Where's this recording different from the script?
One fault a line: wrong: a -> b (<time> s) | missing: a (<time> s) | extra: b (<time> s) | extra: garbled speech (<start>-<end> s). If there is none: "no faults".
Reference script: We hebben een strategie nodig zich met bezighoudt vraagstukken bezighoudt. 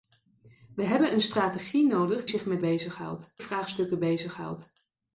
no faults